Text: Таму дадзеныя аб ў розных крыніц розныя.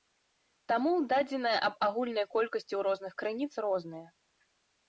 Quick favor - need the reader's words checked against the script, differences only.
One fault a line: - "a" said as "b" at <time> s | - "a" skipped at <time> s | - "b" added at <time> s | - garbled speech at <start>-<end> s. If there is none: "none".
- "агульнай колькасці" added at 1.9 s